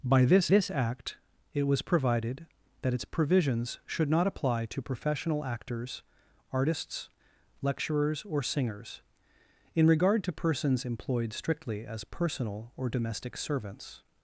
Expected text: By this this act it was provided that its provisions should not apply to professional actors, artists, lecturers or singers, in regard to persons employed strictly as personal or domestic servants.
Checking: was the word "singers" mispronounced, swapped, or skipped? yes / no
no